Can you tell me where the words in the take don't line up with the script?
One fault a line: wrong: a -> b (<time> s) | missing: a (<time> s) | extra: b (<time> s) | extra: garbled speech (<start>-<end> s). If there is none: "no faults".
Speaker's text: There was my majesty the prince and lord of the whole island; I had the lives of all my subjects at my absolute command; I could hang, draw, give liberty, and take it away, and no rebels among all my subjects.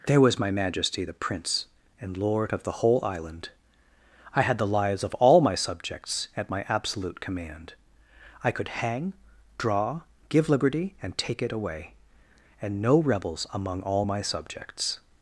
no faults